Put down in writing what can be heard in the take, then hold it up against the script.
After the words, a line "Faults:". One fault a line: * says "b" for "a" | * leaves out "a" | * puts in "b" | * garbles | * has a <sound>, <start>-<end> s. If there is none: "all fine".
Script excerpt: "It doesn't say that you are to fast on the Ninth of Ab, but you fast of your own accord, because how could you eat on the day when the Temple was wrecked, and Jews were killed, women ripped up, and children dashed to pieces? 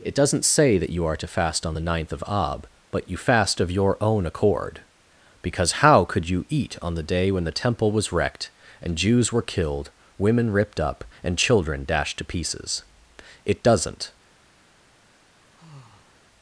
"It doesn't say that you are to fast on the Ninth of Ab, but you fast of your own accord, because how could you eat on the day when the Temple was wrecked, and Jews were killed, women ripped up, and children dashed to pieces? "It doesn't
Faults:
* puts in "It doesn't"
* has a sigh, 15.4-16.2 s